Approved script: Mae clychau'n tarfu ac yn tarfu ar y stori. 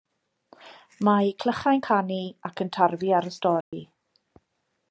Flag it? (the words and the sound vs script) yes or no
yes